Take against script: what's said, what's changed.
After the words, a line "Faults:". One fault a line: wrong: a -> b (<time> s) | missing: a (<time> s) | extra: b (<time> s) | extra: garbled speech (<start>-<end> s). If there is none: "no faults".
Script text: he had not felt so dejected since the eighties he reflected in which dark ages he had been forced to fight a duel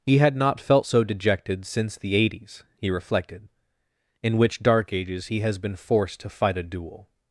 he had not felt so dejected since the eighties he reflected in which dark ages he has been forced to fight a duel
Faults:
wrong: had -> has (5.4 s)